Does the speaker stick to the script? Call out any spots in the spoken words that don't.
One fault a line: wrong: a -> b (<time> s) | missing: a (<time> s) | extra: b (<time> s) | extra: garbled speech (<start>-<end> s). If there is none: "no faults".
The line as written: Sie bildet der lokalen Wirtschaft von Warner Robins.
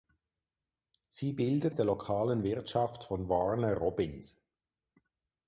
no faults